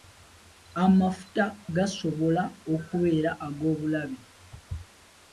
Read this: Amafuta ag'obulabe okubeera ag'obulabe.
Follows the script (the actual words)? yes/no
no